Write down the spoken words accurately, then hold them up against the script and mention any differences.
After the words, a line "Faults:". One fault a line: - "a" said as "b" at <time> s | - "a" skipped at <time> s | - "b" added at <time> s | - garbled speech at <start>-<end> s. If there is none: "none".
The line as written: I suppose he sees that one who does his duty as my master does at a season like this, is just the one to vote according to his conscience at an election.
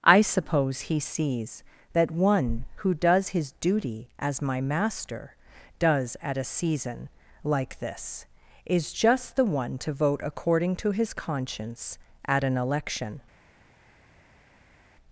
I suppose he sees that one who does his duty as my master does at a season like this, is just the one to vote according to his conscience at an election.
Faults:
none